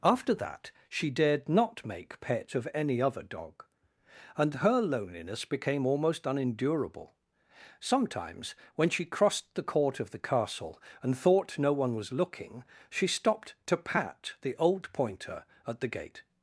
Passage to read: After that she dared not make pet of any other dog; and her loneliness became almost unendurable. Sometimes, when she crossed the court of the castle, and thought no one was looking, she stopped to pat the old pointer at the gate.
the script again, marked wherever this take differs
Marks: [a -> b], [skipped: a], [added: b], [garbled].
After that she dared not make pet of any other dog; and her loneliness became almost unendurable. Sometimes, when she crossed the court of the castle, and thought no one was looking, she stopped to pat the old pointer at the gate.